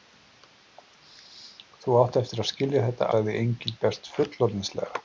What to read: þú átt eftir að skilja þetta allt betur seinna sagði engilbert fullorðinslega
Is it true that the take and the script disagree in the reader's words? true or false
true